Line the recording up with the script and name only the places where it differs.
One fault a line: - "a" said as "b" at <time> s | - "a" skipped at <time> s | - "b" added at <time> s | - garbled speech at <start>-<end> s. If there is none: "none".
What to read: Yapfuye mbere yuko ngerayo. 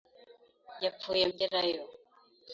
- "mbere yuko" skipped at 1.2 s